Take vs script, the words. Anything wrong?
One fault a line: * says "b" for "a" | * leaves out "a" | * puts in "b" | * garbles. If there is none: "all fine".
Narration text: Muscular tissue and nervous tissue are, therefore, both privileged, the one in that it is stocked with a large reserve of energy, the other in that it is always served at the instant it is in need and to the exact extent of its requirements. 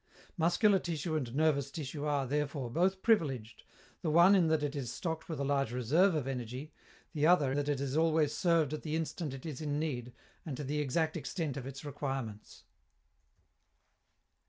* leaves out "in"